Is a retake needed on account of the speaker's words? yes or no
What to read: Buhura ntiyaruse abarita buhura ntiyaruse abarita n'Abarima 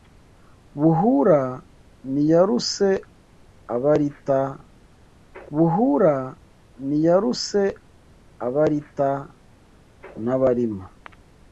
no